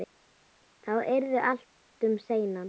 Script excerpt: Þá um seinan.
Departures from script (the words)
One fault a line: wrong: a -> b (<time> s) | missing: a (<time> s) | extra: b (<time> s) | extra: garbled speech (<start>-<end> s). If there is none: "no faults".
extra: yrði allt (1.1 s)